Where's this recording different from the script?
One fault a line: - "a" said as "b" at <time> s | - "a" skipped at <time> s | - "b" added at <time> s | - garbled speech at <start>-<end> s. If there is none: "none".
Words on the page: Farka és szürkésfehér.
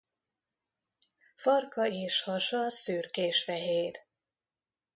- "hasa" added at 2.2 s